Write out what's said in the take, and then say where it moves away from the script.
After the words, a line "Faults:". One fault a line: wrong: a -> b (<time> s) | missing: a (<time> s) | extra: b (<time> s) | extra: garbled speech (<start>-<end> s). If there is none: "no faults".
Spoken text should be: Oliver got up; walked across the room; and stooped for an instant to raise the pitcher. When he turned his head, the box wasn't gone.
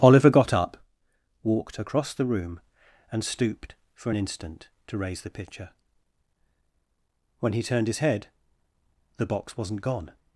Oliver got up; walked across the room; and stooped for an instant to raise the pitcher. When he turned his head, the box wasn't gone.
Faults:
no faults